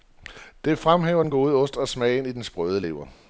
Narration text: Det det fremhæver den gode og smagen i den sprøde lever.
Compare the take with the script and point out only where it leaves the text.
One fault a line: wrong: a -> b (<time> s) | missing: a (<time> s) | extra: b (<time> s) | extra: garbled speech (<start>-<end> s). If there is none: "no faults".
missing: det (0.8 s)
extra: ost (1.5 s)